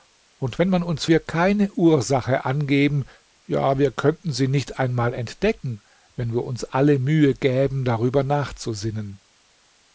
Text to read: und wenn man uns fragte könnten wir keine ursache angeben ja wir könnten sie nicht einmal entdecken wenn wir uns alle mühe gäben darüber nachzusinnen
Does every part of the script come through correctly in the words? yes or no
no